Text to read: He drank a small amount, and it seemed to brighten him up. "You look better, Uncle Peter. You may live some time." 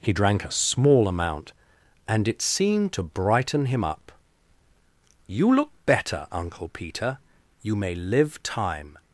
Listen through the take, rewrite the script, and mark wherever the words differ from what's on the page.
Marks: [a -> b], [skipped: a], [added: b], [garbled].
He drank a small amount, and it seemed to brighten him up. "You look better, Uncle Peter. You may live [skipped: some] time."